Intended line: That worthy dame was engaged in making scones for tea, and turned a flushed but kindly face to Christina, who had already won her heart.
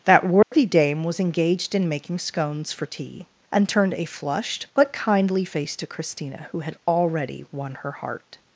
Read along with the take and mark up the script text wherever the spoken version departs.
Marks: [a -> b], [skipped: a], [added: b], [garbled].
That worthy dame was engaged in making scones for tea, and turned a flushed but kindly face to Christina, who had already won her heart.